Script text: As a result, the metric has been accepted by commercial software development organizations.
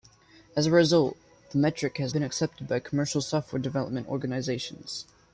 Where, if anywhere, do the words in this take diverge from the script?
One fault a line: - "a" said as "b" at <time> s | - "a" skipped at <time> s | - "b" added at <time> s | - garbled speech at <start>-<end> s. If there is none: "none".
none